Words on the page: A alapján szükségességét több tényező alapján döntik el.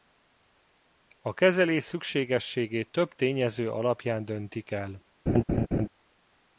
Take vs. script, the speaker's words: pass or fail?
fail